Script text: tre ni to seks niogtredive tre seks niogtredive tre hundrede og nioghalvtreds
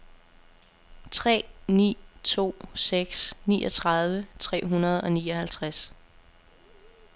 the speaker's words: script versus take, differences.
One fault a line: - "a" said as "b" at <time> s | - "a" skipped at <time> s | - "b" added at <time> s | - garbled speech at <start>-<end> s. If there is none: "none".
- "seks niogtredive tre" skipped at 4.6 s